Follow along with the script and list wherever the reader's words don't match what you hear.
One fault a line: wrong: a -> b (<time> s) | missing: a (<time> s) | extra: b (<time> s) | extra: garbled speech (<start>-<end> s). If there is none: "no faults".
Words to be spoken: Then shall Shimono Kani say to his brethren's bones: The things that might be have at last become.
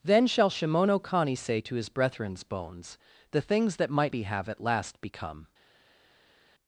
no faults